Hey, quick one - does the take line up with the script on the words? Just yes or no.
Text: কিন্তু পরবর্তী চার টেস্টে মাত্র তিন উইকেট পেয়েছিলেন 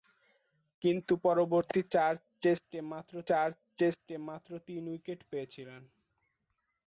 no